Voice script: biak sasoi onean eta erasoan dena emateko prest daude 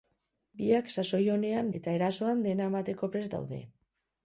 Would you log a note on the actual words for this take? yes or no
no